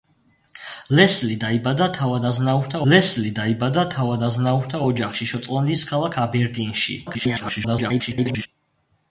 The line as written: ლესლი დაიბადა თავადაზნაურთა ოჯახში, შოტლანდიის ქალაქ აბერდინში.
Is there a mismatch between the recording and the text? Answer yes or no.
yes